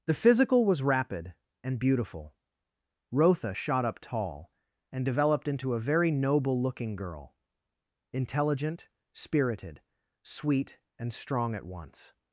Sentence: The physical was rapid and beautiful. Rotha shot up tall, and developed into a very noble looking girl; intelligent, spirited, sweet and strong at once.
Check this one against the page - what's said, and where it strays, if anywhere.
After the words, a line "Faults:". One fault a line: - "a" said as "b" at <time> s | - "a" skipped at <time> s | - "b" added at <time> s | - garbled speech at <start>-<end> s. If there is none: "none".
The physical was rapid and beautiful. Rotha shot up tall, and developed into a very noble looking girl; intelligent, spirited, sweet and strong at once.
Faults:
none